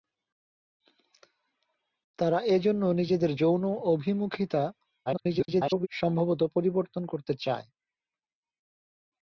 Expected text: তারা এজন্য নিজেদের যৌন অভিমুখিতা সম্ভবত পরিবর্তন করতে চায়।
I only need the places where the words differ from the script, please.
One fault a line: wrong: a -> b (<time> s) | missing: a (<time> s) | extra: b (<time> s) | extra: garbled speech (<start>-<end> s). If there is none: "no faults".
extra: garbled speech (5.1-5.9 s)